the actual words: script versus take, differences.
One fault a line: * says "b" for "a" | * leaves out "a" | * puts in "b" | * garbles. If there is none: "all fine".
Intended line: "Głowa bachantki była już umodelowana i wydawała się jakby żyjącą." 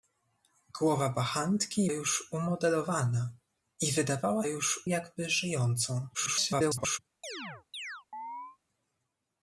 * leaves out "była"
* says "już" for "się"
* garbles